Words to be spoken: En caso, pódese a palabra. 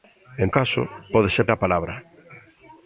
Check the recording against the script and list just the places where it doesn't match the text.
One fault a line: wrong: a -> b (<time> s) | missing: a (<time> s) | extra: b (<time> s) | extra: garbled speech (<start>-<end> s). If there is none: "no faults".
no faults